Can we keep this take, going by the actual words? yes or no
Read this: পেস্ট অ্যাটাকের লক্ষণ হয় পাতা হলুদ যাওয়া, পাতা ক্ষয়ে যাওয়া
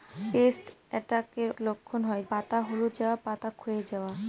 yes